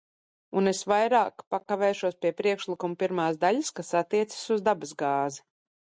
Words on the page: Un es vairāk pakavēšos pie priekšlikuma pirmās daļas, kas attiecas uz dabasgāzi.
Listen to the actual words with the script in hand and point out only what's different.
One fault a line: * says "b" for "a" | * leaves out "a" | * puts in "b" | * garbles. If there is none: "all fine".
all fine